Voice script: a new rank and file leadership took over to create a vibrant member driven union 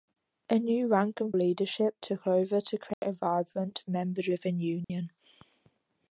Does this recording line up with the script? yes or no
no